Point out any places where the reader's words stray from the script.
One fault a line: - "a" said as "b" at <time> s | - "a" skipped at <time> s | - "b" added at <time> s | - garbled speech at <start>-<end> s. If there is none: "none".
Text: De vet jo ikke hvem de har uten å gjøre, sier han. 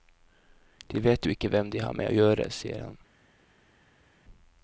- "uten" said as "med" at 2.0 s